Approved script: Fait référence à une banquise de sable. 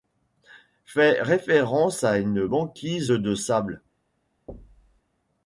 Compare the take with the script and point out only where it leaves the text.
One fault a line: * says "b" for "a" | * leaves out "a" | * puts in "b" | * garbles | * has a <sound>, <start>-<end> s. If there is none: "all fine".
* has a thud, 4.5-5.0 s